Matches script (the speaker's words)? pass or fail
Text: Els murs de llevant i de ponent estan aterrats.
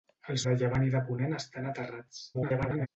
fail